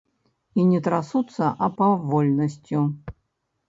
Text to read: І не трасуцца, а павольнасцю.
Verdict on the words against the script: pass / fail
pass